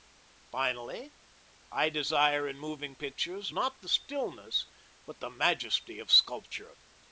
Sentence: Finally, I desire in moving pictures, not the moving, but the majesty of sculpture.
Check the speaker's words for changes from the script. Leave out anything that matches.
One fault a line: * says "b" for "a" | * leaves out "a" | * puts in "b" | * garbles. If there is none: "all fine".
* says "stillness" for "moving"